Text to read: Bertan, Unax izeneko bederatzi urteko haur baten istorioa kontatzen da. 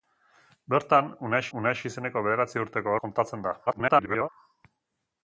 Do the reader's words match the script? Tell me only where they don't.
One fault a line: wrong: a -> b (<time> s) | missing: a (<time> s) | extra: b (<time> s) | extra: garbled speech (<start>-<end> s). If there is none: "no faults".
extra: Unax (1.6 s)
missing: haur baten istorioa (3.0 s)
extra: garbled speech (3.7-4.3 s)